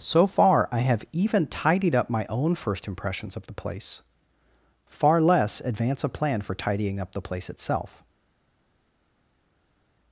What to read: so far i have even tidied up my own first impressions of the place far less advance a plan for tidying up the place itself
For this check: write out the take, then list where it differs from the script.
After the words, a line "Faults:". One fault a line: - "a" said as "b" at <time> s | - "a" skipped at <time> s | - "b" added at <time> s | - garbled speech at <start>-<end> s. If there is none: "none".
so far i have even tidied up my own first impressions of the place far less advance a plan for tidying up the place itself
Faults:
none